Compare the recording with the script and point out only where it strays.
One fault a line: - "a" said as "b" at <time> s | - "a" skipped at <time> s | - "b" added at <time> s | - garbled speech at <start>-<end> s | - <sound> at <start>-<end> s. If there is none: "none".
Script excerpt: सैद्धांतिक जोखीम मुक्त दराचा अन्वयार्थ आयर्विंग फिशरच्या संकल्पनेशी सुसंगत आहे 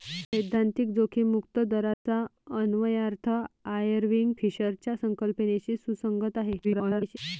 - dropout at 1.9-2.1 s
- garbled speech at 6.6-7.2 s